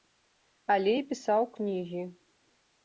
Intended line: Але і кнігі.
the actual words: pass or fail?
fail